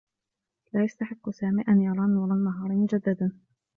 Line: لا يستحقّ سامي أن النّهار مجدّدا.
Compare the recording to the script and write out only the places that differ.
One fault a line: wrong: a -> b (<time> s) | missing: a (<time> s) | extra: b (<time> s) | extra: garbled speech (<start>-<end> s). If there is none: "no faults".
extra: يرى نور (1.8 s)